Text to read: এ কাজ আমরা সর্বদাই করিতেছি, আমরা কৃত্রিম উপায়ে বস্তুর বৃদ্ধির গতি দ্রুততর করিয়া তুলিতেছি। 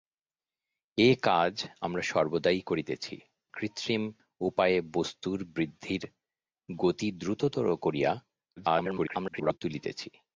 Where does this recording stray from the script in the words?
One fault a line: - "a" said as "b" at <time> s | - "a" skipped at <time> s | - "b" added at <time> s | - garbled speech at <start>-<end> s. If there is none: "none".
- "আমরা" skipped at 3.2 s
- garbled speech at 8.6-9.6 s